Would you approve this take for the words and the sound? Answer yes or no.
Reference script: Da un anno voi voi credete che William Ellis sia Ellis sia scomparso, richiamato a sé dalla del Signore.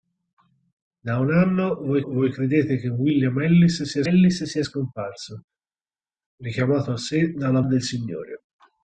yes